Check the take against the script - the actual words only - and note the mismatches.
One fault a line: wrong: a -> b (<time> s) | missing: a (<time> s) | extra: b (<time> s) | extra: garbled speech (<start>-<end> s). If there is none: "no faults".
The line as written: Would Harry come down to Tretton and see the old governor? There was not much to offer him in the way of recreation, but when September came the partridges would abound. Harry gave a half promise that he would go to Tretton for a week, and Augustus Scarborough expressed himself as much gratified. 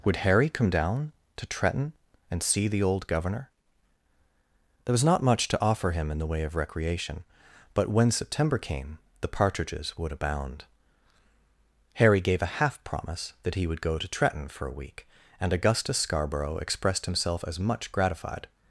no faults